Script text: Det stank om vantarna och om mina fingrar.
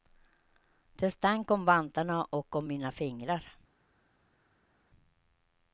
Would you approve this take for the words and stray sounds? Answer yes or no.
yes